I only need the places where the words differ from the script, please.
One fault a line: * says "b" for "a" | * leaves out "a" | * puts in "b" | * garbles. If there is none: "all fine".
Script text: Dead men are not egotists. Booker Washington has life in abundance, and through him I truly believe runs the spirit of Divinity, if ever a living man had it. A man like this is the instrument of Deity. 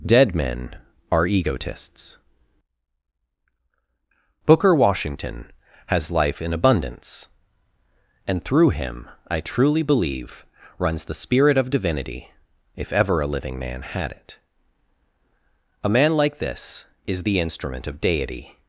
* leaves out "not"